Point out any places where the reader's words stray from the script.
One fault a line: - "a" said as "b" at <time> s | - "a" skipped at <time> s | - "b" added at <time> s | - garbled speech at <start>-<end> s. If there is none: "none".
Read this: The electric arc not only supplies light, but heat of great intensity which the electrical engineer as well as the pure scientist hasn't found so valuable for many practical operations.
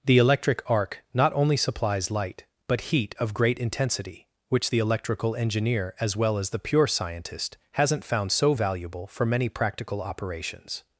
none